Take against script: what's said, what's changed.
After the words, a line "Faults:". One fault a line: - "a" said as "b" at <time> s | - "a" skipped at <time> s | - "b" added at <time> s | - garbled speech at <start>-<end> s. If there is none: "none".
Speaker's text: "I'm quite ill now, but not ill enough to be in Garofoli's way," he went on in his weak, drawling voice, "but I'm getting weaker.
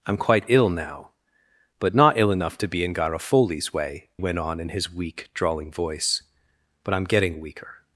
"I'm quite ill now, but not ill enough to be in Garofoli's way," went on in his weak, drawling voice, "but I'm getting weaker.
Faults:
- "he" skipped at 4.1 s